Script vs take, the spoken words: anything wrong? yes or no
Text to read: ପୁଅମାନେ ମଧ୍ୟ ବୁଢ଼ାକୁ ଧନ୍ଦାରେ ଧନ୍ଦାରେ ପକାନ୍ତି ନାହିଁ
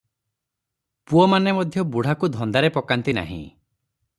yes